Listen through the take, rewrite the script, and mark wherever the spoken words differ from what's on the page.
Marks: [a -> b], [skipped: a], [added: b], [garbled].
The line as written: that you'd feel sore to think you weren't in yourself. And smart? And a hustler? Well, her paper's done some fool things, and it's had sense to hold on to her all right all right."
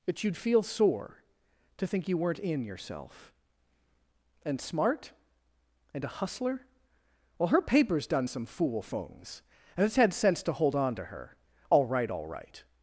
that you'd feel sore to think you weren't in yourself. And smart? And a hustler? Well, her paper's done some fool things, and it's had sense to hold on to her all right all right."